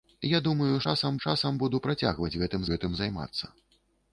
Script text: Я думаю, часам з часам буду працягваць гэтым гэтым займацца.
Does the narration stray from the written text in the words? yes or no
no